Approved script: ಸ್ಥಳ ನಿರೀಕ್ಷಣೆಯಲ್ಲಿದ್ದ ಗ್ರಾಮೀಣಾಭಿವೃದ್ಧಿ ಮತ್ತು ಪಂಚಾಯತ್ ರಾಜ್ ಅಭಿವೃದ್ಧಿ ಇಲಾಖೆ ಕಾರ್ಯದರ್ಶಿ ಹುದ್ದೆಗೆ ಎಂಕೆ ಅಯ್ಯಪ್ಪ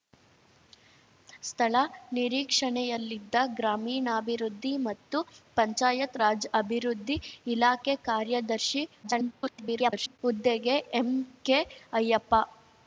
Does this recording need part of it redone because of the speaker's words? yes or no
yes